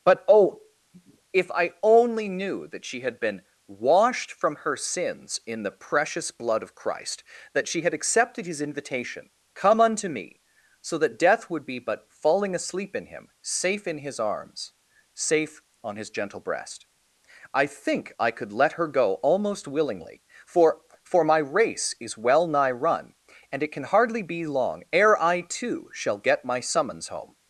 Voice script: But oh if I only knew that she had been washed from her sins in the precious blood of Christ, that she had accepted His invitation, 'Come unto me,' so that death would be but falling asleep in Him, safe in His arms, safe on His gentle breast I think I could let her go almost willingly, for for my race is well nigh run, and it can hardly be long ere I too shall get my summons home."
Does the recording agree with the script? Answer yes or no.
yes